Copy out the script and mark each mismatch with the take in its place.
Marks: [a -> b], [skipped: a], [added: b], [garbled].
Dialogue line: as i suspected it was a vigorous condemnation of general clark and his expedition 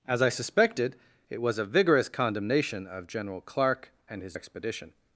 as i suspected it was a vigorous condemnation of general clark and his expedition